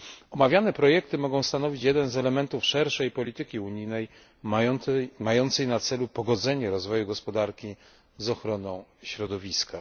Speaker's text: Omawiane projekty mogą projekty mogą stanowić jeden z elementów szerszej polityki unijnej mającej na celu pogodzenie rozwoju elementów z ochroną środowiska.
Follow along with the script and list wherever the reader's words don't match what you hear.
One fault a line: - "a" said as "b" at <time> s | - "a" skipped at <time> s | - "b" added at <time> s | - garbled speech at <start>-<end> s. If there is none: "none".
- "projekty mogą" skipped at 1.4 s
- "elementów" said as "gospodarki" at 7.1 s